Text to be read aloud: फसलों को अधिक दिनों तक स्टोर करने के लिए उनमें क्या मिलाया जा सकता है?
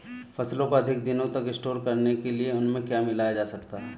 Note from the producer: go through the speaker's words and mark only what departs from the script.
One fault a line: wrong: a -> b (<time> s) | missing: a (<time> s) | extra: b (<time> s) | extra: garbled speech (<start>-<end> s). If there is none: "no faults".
no faults